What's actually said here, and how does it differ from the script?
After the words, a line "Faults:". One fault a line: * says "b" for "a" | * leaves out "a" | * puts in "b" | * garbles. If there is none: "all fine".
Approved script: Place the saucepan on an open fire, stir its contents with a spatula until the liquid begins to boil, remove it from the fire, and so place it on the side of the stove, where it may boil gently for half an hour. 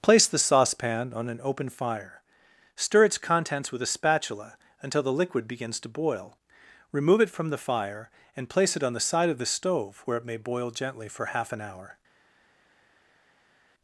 Place the saucepan on an open fire, stir its contents with a spatula until the liquid begins to boil, remove it from the fire, and place it on the side of the stove, where it may boil gently for half an hour.
Faults:
* leaves out "so"